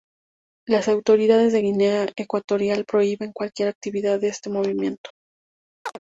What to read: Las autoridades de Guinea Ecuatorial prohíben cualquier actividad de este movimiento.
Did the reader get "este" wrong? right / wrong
right